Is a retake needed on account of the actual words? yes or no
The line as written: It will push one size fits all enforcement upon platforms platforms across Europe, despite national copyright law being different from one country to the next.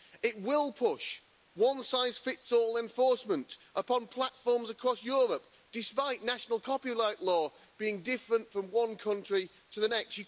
yes